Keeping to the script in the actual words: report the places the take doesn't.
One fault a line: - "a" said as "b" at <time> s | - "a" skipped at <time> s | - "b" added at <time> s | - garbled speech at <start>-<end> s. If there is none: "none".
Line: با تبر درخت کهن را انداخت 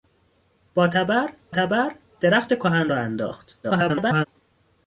- "تبر" added at 1.5 s
- garbled speech at 3.6-4.3 s